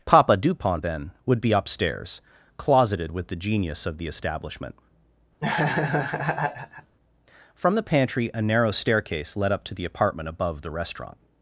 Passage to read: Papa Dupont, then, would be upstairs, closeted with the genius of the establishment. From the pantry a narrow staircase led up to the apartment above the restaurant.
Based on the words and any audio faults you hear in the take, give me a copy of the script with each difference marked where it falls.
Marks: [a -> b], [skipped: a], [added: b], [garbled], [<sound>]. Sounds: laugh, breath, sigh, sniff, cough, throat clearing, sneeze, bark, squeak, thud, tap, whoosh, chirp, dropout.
Papa Dupont, then, would be upstairs, closeted with the genius of the establishment. [laugh] From the pantry a narrow staircase led up to the apartment above the restaurant.